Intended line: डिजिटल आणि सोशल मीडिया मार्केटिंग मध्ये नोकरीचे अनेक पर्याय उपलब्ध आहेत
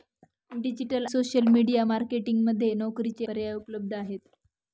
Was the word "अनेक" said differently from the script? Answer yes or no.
yes